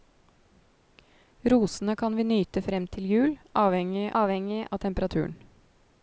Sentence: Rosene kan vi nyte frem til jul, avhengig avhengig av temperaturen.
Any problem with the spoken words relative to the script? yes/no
no